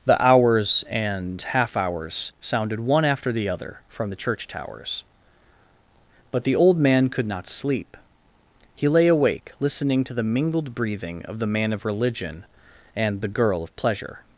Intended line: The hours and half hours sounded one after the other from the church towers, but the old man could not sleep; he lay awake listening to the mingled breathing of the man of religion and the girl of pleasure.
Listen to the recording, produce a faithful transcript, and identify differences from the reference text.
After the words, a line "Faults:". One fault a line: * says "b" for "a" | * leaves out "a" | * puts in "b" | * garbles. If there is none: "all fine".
The hours and half hours sounded one after the other from the church towers, but the old man could not sleep; he lay awake listening to the mingled breathing of the man of religion and the girl of pleasure.
Faults:
all fine